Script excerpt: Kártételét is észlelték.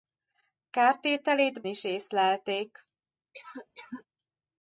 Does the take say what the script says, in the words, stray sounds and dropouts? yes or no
no